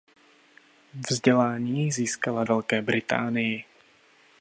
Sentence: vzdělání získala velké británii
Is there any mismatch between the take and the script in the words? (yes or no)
no